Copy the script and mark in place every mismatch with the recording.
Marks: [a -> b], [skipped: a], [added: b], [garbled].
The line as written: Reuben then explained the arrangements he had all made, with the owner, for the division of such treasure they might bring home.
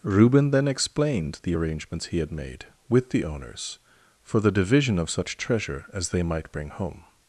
Reuben then explained the arrangements he had [skipped: all] made, with the [owner, -> owners] for the division of such treasure [added: as] they might bring home.